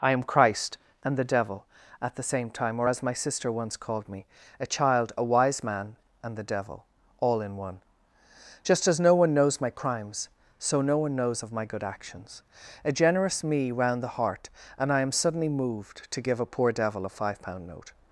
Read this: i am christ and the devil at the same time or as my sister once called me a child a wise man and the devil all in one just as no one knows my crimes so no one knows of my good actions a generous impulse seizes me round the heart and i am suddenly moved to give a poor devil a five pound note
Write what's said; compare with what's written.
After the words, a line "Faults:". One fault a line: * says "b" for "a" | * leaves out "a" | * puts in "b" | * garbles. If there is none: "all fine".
i am christ and the devil at the same time or as my sister once called me a child a wise man and the devil all in one just as no one knows my crimes so no one knows of my good actions a generous me round the heart and i am suddenly moved to give a poor devil a five pound note
Faults:
* leaves out "impulse seizes"